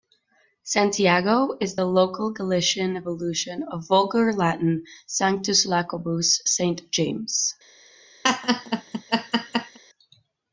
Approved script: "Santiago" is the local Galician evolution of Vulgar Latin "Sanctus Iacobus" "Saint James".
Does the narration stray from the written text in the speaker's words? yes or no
no